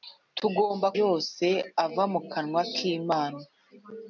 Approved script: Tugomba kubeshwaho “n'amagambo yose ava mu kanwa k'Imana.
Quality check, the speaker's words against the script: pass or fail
fail